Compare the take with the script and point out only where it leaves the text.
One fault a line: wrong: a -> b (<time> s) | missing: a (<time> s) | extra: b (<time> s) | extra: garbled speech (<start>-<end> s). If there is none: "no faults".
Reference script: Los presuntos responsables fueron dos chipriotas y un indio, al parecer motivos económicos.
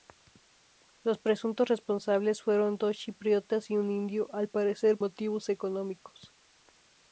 no faults